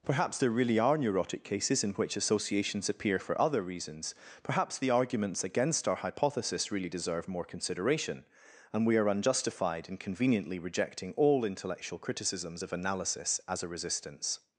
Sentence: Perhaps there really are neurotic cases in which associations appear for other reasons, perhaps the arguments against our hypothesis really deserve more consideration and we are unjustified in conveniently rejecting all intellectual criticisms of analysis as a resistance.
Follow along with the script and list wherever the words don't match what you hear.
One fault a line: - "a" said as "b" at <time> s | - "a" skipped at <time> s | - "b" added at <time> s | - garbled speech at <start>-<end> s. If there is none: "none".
none